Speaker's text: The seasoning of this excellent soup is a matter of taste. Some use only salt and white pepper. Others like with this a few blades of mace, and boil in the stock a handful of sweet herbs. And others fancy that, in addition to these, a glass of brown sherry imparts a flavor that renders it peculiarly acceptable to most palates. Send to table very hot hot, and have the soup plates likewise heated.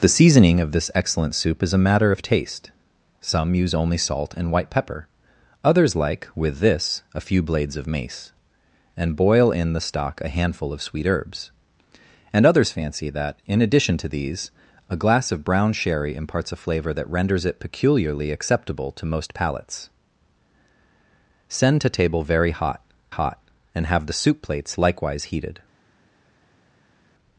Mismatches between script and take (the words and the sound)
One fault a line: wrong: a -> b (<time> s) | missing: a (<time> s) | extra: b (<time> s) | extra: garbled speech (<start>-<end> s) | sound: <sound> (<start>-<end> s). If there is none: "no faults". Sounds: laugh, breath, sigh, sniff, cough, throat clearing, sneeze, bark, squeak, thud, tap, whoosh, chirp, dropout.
no faults